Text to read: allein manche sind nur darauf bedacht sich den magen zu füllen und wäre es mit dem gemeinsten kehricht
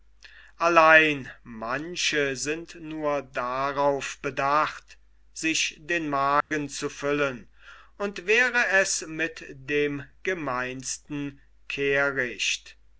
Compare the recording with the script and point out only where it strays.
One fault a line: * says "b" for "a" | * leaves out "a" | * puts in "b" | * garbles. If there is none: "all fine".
all fine